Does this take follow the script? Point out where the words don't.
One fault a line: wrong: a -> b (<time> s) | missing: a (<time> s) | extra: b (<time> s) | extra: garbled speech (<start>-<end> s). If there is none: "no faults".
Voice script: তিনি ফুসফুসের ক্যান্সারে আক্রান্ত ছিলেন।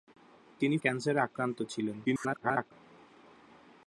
missing: ফুসফুসের (0.8 s)
extra: garbled speech (2.0-2.7 s)